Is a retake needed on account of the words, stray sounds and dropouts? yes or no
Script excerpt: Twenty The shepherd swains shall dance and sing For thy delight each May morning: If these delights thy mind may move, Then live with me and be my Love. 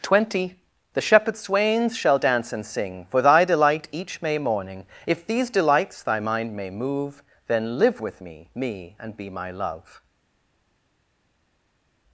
yes